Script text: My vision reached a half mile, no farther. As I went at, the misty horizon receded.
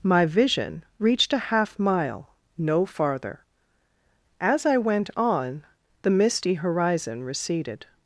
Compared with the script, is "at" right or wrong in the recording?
wrong